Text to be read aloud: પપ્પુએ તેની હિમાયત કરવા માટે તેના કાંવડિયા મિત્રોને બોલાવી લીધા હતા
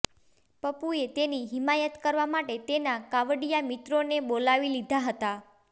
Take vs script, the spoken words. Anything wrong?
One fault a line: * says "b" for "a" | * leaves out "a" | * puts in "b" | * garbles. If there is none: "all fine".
all fine